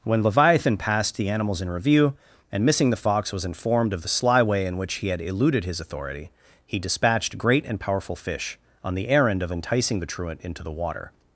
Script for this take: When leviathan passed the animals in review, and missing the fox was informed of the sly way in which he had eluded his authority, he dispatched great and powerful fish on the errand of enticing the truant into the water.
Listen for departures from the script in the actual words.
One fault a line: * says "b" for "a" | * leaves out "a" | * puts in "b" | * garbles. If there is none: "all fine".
all fine